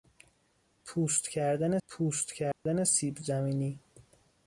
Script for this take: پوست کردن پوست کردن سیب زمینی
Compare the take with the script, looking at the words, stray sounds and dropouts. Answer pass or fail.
fail